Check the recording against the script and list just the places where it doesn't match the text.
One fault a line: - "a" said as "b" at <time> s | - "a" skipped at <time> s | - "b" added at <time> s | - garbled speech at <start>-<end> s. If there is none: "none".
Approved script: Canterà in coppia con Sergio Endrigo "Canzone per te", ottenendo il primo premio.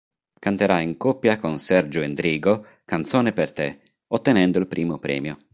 none